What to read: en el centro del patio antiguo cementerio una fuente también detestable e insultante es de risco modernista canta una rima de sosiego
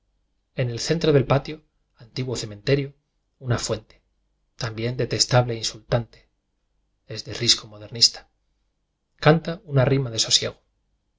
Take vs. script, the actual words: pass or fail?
pass